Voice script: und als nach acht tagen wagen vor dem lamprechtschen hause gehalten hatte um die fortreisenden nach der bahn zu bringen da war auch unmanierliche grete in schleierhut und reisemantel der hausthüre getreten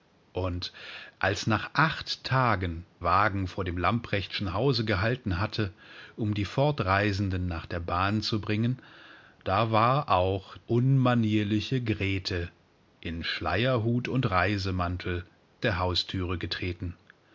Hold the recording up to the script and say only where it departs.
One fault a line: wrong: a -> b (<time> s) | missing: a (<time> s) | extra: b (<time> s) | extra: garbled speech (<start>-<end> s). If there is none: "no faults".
no faults